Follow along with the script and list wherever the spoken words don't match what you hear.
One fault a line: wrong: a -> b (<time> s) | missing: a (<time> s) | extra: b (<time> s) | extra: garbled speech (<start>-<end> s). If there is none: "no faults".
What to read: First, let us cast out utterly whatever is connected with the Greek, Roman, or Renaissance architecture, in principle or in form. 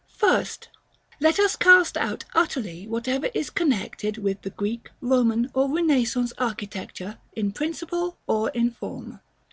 no faults